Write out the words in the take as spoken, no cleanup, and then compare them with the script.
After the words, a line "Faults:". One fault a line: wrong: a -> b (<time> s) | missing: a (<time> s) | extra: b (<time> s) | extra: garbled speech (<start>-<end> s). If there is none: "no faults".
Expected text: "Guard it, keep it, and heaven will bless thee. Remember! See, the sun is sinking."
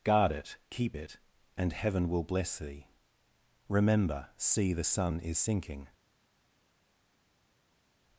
"Guard it, keep it, and heaven will bless thee. Remember! See, the sun is sinking."
Faults:
no faults